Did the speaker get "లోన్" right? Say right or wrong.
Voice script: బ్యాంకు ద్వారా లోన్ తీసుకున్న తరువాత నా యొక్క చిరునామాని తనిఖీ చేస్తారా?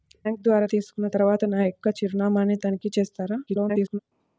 wrong